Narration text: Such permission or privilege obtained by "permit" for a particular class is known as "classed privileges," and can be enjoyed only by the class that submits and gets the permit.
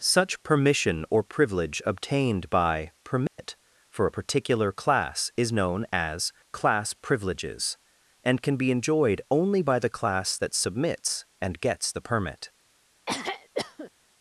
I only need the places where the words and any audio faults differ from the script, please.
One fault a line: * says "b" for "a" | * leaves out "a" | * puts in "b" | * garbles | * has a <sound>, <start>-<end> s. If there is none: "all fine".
* has a dropout, 3.3-3.4 s
* says "class" for "classed"
* has a throat clearing, 13.1-13.9 s